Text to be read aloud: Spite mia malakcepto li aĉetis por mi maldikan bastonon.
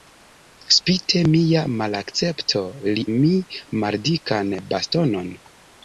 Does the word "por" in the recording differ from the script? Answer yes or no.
yes